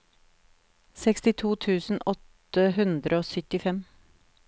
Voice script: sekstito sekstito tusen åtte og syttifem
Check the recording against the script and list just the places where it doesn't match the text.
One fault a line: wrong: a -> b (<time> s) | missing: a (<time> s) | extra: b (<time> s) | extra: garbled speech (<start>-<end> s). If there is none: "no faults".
missing: sekstito (1.5 s)
extra: hundre (2.8 s)